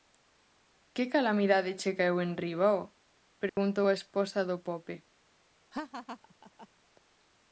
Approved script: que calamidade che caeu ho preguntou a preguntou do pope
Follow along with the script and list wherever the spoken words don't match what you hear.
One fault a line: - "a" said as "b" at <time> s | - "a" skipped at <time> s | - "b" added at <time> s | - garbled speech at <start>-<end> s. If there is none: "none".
- "enriba" added at 2.3 s
- "preguntou" said as "esposa" at 4.0 s